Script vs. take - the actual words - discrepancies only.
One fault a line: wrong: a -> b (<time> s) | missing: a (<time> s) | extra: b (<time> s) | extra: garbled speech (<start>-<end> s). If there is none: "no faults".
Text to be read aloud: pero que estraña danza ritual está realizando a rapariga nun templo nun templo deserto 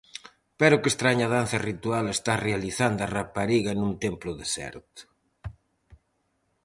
missing: nun templo (4.3 s)